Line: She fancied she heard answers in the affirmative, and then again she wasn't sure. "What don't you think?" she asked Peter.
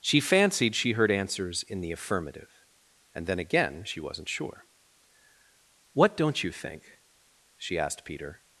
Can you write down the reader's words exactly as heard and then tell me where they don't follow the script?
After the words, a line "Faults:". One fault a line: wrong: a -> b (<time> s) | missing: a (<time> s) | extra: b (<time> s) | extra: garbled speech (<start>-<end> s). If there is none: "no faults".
She fancied she heard answers in the affirmative, and then again she wasn't sure. "What don't you think?" she asked Peter.
Faults:
no faults